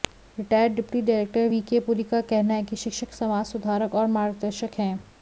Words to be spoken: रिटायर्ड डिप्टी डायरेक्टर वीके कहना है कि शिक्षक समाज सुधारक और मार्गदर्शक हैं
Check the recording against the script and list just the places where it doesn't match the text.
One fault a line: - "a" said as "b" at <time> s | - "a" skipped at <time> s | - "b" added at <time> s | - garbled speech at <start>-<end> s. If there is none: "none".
- "पुरी का" added at 1.9 s